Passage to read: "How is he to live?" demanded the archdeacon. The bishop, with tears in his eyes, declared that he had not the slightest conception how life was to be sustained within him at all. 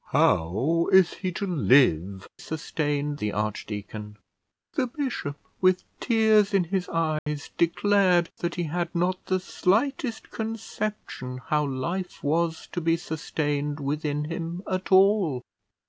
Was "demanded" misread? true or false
true